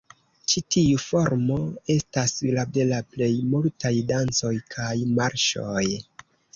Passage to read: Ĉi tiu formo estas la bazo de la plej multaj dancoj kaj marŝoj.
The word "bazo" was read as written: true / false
false